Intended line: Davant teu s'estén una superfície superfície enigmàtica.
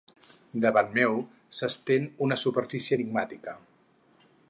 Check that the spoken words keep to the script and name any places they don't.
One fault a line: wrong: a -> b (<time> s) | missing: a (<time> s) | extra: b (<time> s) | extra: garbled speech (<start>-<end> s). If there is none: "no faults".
wrong: teu -> meu (0.9 s)
missing: superfície (3.0 s)